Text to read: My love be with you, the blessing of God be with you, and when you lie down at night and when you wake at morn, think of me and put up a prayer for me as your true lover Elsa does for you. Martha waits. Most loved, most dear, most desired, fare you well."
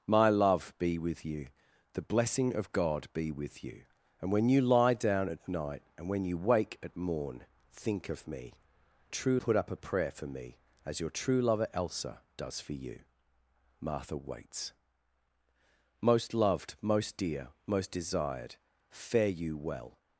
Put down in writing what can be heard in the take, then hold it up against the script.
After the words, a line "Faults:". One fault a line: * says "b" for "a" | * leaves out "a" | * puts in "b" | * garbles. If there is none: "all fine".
My love be with you, the blessing of God be with you, and when you lie down at night and when you wake at morn, think of me true put up a prayer for me as your true lover Elsa does for you. Martha waits. Most loved, most dear, most desired, fare you well."
Faults:
* says "true" for "and"